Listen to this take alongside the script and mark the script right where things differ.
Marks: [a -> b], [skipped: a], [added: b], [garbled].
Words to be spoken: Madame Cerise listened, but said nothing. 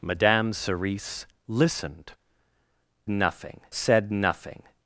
Madame Cerise listened, [but -> nothing] said nothing.